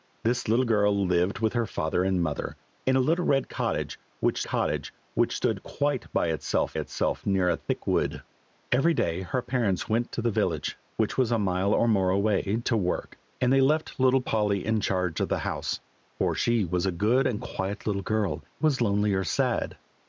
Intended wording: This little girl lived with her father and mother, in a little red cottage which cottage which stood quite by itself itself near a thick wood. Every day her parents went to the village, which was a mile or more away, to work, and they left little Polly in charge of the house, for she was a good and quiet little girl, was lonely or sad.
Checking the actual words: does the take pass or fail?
pass